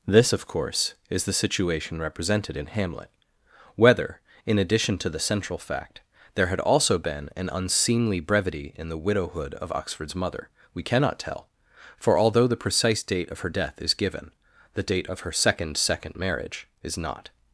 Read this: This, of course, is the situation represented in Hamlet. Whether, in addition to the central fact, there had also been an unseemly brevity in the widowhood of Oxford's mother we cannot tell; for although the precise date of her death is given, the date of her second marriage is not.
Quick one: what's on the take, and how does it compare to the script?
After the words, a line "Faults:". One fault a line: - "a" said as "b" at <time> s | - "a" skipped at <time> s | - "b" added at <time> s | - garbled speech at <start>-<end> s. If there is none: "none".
This, of course, is the situation represented in Hamlet. Whether, in addition to the central fact, there had also been an unseemly brevity in the widowhood of Oxford's mother we cannot tell; for although the precise date of her death is given, the date of her second second marriage is not.
Faults:
- "second" added at 15.8 s